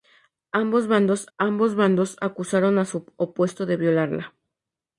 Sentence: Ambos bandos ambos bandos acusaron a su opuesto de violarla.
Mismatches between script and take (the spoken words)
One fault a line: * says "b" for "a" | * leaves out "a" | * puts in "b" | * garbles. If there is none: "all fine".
all fine